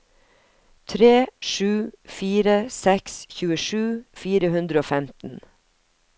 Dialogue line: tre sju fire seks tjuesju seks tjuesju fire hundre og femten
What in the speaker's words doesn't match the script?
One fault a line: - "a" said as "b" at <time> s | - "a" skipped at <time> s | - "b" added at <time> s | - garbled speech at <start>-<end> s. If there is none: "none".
- "seks tjuesju" skipped at 3.8 s